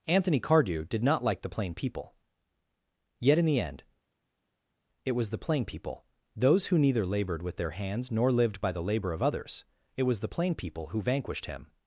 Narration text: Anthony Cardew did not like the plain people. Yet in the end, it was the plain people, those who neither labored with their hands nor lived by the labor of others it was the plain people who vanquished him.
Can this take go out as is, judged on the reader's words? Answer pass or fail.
pass